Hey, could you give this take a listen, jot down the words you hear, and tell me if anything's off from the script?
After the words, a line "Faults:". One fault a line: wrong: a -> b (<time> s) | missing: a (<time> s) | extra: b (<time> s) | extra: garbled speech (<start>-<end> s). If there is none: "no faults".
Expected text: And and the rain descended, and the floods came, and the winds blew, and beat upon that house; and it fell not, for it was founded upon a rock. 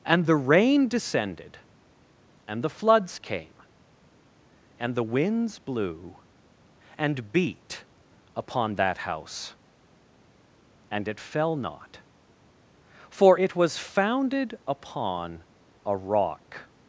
And the rain descended, and the floods came, and the winds blew, and beat upon that house; and it fell not, for it was founded upon a rock.
Faults:
missing: and (0.2 s)